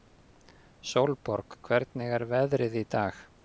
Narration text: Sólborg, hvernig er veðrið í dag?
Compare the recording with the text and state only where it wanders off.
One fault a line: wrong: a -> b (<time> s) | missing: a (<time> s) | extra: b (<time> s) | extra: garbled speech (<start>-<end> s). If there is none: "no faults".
no faults